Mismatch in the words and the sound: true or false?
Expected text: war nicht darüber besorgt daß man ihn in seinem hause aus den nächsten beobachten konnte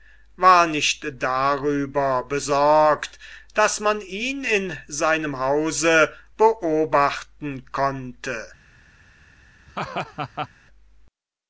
true